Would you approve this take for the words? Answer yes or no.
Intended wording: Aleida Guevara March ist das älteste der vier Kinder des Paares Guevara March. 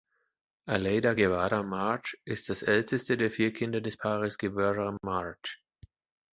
yes